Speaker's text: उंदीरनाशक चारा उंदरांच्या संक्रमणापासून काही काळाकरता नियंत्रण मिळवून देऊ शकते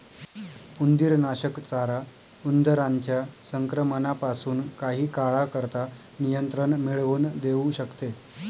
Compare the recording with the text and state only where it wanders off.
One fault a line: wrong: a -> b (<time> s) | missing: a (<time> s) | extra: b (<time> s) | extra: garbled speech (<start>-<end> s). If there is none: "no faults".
no faults